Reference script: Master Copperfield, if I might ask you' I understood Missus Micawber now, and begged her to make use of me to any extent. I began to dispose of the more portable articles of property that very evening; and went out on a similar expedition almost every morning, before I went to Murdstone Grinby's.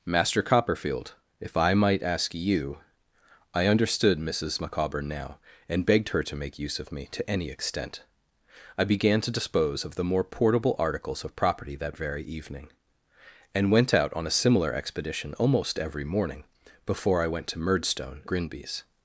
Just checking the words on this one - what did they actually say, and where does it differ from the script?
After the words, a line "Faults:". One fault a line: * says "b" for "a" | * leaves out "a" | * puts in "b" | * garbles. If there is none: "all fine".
Master Copperfield, if I might ask you' I understood Missus Micawber now, and begged her to make use of me to any extent. I began to dispose of the more portable articles of property that very evening; and went out on a similar expedition almost every morning, before I went to Murdstone Grinby's.
Faults:
all fine